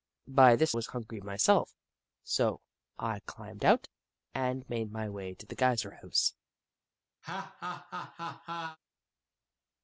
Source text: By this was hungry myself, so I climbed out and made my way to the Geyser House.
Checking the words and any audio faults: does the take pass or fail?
fail